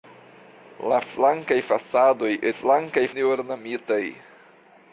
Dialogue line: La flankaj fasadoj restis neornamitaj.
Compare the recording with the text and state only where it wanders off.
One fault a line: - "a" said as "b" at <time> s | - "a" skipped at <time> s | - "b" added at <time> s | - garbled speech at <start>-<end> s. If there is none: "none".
- "restis" said as "flankaj" at 2.5 s